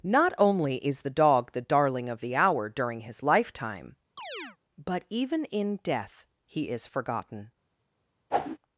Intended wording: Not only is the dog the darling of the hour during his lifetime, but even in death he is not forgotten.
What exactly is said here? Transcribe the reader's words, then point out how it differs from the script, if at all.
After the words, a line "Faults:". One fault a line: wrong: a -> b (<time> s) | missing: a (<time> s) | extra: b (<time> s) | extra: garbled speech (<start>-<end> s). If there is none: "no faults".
Not only is the dog the darling of the hour during his lifetime, but even in death he is forgotten.
Faults:
missing: not (6.9 s)